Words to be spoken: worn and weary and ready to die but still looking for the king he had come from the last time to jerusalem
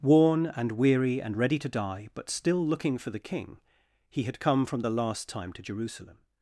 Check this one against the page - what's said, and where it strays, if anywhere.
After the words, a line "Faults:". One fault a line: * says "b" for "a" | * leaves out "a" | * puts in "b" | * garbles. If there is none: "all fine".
worn and weary and ready to die but still looking for the king he had come from the last time to jerusalem
Faults:
all fine